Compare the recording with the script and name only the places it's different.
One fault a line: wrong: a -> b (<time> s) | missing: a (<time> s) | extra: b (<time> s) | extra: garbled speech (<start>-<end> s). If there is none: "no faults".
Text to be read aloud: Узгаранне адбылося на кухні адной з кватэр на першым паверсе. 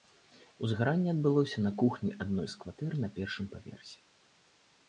no faults